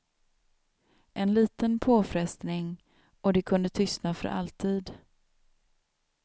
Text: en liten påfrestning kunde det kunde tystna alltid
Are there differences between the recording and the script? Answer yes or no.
yes